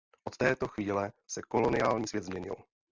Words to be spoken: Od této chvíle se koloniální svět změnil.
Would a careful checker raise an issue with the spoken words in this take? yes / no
no